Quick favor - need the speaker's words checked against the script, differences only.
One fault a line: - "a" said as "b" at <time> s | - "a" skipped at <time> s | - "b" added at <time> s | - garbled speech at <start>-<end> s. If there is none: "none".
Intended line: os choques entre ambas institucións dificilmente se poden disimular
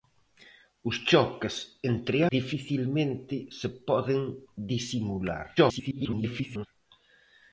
- "ambas institucións" skipped at 2.2 s
- garbled speech at 5.6-6.7 s